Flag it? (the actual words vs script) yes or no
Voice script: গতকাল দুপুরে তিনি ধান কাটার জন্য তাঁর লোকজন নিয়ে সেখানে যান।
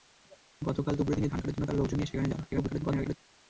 yes